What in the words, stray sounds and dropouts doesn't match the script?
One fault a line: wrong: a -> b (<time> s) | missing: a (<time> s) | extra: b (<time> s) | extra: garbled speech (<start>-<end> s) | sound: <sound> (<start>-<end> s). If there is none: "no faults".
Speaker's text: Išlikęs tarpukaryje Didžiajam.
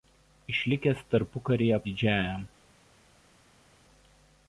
no faults